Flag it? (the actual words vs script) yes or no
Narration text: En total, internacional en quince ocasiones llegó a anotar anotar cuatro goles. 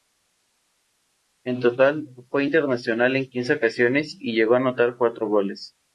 yes